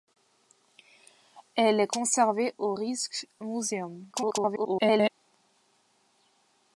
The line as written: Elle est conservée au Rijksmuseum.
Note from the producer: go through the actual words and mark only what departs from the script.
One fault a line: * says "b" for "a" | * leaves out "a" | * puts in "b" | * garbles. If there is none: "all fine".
* garbles